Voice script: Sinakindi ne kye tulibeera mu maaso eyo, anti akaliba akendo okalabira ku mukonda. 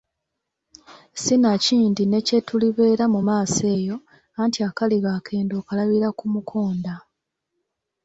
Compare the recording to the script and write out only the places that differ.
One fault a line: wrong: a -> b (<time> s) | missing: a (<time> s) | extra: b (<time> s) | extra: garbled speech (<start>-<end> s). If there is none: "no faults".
no faults